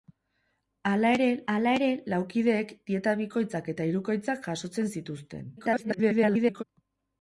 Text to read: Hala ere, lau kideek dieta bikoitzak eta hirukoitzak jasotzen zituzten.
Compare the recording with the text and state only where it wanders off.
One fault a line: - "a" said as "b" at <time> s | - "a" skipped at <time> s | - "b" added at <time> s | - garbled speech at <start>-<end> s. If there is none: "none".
- "hala ere" added at 1.5 s
- garbled speech at 5.6-6.6 s